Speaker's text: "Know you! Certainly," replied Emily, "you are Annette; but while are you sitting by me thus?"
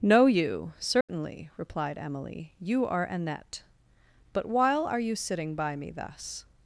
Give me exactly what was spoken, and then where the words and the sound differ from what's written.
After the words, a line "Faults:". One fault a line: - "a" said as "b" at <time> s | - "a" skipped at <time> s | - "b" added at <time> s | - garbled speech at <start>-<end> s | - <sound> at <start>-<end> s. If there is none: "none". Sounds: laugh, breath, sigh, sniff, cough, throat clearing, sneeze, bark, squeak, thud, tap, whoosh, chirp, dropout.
"Know you! Certainly," replied Emily, "you are Annette; but while are you sitting by me thus?"
Faults:
- dropout at 1.0-1.1 s